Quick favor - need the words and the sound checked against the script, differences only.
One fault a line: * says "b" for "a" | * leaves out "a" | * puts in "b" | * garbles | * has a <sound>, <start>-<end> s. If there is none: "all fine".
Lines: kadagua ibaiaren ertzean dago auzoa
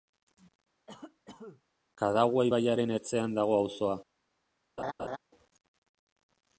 * has a cough, 0.9-1.6 s
* has a laugh, 4.8-5.2 s